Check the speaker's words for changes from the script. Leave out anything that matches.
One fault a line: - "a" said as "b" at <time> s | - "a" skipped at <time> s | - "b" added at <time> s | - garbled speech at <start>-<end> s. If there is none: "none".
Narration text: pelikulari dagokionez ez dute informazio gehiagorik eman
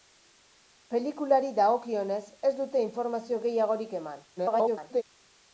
- garbled speech at 4.4-5.0 s